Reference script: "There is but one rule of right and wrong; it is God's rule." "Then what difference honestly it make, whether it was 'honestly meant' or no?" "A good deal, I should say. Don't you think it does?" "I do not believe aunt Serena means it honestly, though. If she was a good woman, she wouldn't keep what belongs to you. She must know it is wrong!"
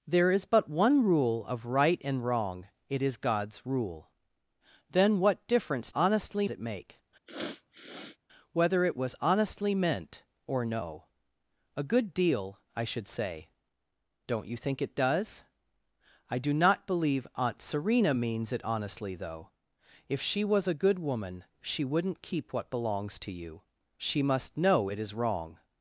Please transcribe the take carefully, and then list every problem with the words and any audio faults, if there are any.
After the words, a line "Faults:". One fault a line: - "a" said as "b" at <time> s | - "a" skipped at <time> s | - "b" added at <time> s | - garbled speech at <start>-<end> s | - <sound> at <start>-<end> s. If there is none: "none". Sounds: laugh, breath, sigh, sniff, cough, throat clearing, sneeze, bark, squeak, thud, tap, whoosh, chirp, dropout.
"There is but one rule of right and wrong; it is God's rule." "Then what difference honestly it make, whether it was 'honestly meant' or no?" "A good deal, I should say. Don't you think it does?" "I do not believe aunt Serena means it honestly, though. If she was a good woman, she wouldn't keep what belongs to you. She must know it is wrong!"
Faults:
- sniff at 7.3-8.2 s